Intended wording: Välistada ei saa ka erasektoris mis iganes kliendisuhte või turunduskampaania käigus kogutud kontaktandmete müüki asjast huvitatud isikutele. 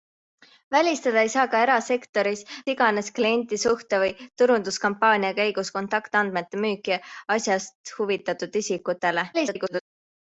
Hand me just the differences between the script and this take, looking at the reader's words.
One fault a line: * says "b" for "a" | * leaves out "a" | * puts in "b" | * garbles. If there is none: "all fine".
* leaves out "mis"
* leaves out "kogutud"
* garbles